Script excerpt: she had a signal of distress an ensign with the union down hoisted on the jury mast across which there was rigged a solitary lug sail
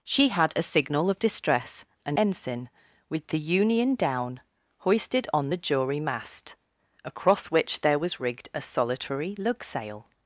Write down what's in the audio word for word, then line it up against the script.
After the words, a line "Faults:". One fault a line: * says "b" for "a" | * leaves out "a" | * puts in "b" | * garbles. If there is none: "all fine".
she had a signal of distress an ensign with the union down hoisted on the jury mast across which there was rigged a solitary lug sail
Faults:
all fine